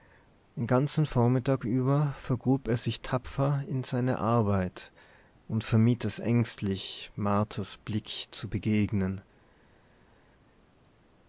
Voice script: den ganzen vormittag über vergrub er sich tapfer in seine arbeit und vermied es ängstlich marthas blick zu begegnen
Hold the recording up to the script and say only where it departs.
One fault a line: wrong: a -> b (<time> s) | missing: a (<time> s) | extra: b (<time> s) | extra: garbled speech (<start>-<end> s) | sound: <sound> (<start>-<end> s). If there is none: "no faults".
no faults